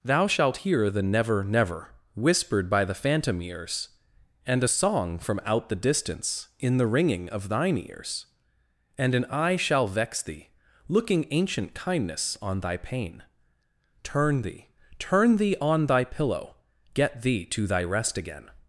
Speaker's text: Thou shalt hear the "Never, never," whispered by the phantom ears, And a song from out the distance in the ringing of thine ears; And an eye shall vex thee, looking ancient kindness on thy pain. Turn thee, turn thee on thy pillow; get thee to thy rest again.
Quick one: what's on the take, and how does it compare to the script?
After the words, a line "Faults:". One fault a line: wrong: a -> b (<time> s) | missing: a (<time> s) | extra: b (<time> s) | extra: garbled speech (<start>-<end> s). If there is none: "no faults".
Thou shalt hear the "Never, never," whispered by the phantom ears, And a song from out the distance in the ringing of thine ears; And an eye shall vex thee, looking ancient kindness on thy pain. Turn thee, turn thee on thy pillow; get thee to thy rest again.
Faults:
no faults